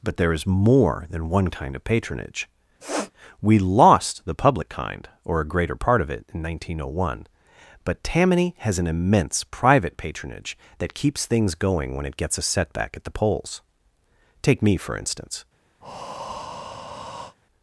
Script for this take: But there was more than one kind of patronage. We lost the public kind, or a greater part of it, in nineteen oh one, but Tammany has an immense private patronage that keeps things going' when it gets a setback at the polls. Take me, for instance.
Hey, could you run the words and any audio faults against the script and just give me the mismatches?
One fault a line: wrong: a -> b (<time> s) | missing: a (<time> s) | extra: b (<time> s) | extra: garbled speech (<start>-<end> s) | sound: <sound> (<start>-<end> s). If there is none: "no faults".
wrong: was -> is (0.3 s)
sound: sniff (2.8-3.1 s)
sound: breath (15.8-17.4 s)